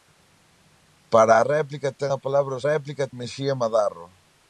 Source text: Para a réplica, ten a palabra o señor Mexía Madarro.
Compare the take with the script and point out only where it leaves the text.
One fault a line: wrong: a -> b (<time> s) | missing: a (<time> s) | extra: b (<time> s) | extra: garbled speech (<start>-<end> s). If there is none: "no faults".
wrong: señor -> réplica (2.7 s)